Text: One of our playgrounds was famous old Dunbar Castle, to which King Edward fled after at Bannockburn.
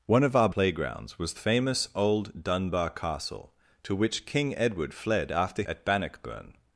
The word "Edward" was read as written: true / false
true